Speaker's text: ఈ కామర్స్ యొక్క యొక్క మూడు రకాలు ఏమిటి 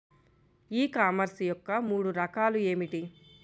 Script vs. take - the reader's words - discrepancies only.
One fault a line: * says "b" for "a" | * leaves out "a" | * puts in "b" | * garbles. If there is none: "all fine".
* leaves out "యొక్క"